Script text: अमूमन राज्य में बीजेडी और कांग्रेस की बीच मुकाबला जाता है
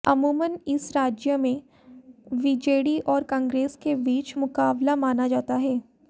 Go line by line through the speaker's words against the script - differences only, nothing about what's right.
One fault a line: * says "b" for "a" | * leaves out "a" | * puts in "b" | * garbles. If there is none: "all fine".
* puts in "इस"
* says "के" for "की"
* puts in "माना"